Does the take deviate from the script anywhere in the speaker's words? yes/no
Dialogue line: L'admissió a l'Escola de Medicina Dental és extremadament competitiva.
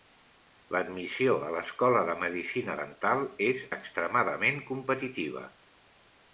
no